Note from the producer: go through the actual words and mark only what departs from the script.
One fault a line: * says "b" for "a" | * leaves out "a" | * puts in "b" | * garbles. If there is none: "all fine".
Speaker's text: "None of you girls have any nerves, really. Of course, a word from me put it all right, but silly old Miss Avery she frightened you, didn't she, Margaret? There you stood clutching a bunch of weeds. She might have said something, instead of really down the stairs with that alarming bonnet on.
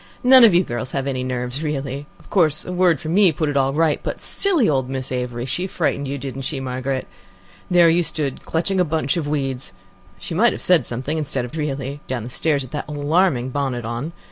all fine